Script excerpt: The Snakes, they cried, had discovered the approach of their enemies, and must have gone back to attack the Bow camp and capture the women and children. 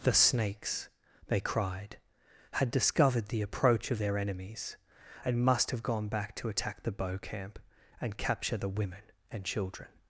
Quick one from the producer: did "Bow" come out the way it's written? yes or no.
yes